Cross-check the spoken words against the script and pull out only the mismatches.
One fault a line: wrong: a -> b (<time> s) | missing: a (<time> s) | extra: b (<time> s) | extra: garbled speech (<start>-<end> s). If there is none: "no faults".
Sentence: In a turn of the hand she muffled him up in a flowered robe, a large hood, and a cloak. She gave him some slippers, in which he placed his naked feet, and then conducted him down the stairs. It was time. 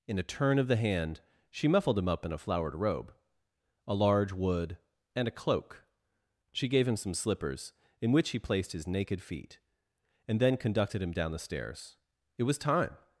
wrong: hood -> wood (4.3 s)